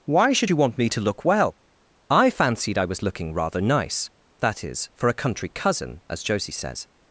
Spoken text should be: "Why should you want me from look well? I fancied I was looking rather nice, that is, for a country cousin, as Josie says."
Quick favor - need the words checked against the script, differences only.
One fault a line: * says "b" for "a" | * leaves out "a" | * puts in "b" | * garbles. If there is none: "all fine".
* says "to" for "from"